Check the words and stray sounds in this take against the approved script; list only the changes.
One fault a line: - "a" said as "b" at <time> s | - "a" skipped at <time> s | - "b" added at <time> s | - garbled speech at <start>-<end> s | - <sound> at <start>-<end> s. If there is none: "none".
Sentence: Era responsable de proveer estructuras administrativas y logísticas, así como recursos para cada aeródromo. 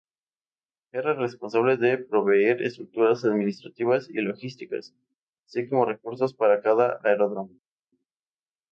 none